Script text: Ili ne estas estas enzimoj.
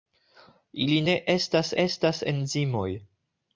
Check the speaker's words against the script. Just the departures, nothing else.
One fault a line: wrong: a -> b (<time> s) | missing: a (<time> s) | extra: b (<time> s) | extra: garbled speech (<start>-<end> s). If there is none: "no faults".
no faults